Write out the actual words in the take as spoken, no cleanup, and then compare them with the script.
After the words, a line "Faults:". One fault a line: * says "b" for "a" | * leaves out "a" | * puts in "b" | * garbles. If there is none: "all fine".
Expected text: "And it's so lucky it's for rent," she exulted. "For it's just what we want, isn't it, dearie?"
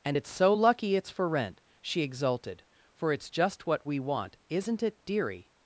"And it's so lucky it's for rent," she exulted. "For it's just what we want, isn't it, dearie?"
Faults:
all fine